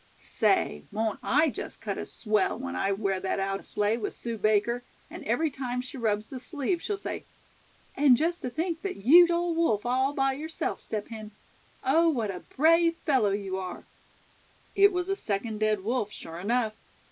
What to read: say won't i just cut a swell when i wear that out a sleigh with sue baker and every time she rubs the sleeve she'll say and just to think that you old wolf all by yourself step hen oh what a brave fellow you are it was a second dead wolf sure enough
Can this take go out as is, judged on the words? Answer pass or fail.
pass